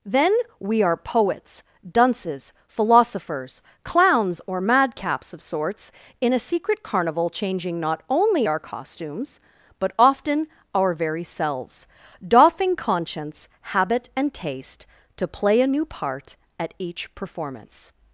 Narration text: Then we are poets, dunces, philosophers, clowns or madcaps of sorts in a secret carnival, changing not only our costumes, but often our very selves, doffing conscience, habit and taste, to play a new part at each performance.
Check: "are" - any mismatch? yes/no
no